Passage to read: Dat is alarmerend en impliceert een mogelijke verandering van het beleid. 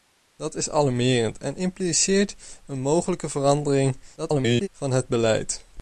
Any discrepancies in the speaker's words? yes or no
yes